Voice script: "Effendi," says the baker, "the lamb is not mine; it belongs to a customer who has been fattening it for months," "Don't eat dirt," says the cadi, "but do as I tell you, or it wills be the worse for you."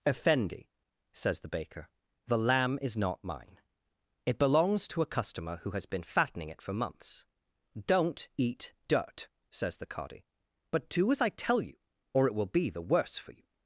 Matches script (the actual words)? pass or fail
fail